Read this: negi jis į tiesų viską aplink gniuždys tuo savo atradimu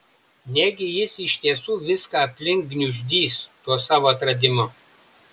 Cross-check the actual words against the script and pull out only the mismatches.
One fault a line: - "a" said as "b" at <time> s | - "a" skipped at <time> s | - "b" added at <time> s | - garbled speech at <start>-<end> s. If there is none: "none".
- "į" said as "iš" at 1.2 s